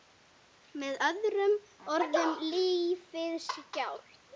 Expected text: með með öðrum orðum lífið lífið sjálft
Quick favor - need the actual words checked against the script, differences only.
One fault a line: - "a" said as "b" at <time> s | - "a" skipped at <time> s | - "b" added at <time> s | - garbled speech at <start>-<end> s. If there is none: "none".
- "með" skipped at 1.0 s
- "lífið" skipped at 3.4 s